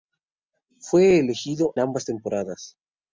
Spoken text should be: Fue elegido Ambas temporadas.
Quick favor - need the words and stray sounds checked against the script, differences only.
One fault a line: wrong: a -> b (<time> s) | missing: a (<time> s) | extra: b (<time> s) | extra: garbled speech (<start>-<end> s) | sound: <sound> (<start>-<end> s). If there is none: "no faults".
no faults